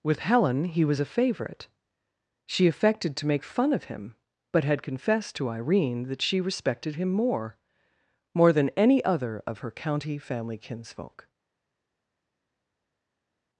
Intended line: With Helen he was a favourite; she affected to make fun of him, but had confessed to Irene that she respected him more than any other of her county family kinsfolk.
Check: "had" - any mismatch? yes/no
no